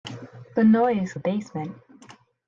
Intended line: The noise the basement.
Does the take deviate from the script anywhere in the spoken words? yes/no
no